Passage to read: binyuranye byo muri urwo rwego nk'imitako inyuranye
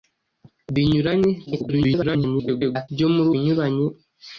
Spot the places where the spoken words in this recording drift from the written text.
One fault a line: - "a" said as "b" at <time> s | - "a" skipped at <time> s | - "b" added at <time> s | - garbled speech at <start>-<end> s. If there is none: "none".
- garbled speech at 1.5-2.9 s
- "urwo rwego nk'imitako" skipped at 3.3 s